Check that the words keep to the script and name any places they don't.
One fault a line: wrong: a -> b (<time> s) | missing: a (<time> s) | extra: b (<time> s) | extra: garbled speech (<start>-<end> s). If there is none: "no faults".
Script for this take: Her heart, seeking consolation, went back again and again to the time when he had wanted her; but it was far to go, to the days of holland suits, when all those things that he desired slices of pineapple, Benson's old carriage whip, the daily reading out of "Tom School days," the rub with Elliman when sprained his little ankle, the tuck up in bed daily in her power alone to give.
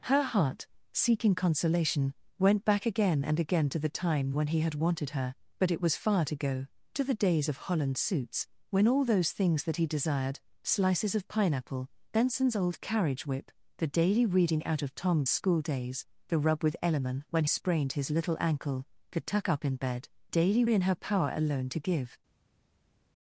no faults